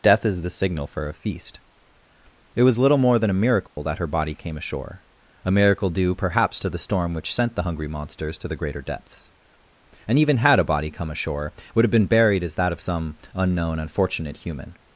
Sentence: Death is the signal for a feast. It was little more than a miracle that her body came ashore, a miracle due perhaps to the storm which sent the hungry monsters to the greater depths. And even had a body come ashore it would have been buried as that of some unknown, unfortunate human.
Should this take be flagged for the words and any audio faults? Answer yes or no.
yes